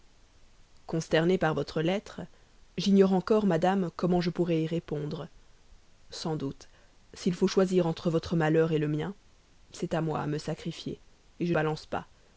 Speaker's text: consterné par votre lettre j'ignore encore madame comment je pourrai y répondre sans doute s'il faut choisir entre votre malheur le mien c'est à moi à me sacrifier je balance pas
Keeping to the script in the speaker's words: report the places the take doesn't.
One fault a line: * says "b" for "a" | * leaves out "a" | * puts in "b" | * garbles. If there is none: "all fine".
all fine